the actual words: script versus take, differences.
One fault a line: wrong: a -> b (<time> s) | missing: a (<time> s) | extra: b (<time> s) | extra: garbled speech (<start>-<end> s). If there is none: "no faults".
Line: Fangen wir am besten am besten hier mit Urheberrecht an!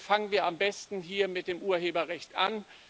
missing: am besten (1.0 s)
extra: dem (1.5 s)